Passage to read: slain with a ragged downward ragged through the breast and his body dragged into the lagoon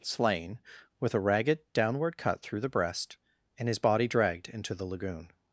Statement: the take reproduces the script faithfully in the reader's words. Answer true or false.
false